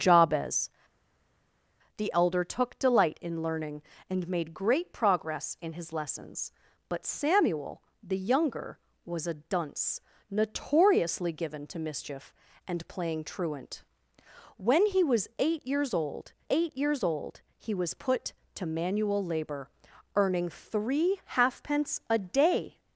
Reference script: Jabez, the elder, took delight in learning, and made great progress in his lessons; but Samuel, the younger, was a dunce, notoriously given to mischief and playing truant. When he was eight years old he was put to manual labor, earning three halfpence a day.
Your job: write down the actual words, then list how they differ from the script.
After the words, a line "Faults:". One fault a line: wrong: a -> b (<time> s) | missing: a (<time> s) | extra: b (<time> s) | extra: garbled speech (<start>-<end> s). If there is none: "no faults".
Jabez, the elder, took delight in learning, and made great progress in his lessons; but Samuel, the younger, was a dunce, notoriously given to mischief and playing truant. When he was eight years old eight years old he was put to manual labor, earning three halfpence a day.
Faults:
extra: eight years old (16.5 s)